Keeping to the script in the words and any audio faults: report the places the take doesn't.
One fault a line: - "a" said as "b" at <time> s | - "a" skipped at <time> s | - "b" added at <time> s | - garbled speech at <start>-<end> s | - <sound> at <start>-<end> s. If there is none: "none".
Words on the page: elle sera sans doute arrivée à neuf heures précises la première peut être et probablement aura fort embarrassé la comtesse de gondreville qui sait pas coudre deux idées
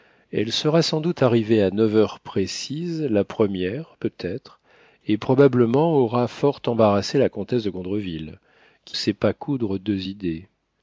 none